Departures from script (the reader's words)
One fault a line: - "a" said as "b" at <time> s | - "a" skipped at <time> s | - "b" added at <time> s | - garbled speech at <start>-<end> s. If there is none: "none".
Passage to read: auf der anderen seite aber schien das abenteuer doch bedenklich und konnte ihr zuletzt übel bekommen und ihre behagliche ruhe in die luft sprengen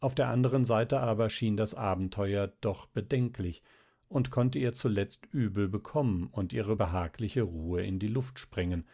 none